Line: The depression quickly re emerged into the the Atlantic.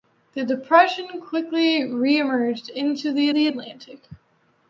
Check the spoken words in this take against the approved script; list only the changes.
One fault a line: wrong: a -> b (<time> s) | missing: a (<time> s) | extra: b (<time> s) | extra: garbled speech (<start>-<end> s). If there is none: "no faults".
no faults